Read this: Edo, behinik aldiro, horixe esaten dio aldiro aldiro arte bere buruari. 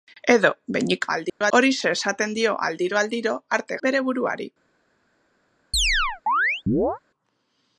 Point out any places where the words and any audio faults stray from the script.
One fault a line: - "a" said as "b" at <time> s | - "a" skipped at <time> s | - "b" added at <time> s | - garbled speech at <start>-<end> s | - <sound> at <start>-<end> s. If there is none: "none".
- dropout at 1.3-1.4 s
- chirp at 5.7-7.0 s